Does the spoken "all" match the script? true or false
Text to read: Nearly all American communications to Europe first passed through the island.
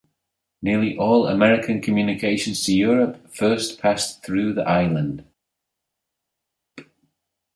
true